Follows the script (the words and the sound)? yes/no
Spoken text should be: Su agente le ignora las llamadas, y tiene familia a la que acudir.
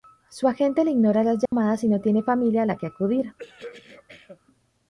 no